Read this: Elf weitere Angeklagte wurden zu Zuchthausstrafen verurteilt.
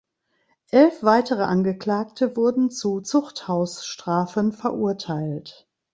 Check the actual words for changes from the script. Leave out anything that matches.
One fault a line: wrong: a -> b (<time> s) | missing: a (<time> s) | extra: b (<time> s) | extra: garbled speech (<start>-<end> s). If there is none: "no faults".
no faults